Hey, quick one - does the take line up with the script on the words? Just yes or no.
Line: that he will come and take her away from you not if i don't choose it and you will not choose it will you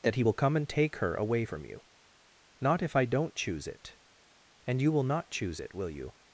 yes